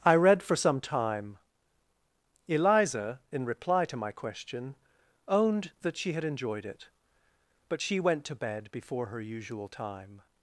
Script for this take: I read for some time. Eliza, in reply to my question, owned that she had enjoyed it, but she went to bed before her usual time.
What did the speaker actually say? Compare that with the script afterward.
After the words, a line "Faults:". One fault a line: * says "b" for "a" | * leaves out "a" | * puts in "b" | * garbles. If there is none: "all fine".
I read for some time. Eliza, in reply to my question, owned that she had enjoyed it, but she went to bed before her usual time.
Faults:
all fine